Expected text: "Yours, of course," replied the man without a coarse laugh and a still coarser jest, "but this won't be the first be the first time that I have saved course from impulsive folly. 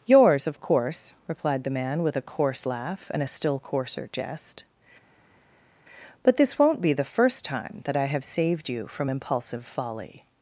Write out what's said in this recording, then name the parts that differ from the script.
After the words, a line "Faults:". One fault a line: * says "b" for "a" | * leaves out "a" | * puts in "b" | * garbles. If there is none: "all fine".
"Yours, of course," replied the man with a coarse laugh and a still coarser jest, "but this won't be the first time that I have saved you from impulsive folly.
Faults:
* says "with" for "without"
* leaves out "be the first"
* says "you" for "course"